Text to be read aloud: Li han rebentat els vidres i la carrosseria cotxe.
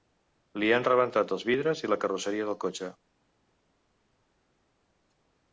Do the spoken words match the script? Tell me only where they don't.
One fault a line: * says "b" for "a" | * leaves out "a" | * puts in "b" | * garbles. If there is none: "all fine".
* puts in "del"